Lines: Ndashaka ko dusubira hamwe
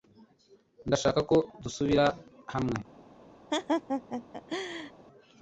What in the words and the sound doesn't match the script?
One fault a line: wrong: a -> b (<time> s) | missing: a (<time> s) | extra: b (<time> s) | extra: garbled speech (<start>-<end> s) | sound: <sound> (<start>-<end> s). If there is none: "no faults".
sound: laugh (3.5-4.9 s)